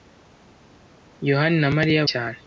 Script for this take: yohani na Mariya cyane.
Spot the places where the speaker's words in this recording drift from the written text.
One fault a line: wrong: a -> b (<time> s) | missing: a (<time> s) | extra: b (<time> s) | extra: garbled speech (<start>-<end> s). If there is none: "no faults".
no faults